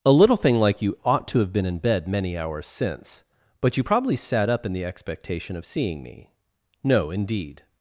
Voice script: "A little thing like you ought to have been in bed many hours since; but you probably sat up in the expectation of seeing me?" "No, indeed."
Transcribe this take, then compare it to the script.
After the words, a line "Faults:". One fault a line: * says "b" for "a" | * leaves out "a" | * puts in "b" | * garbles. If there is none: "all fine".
"A little thing like you ought to have been in bed many hours since; but you probably sat up in the expectation of seeing me?" "No, indeed."
Faults:
all fine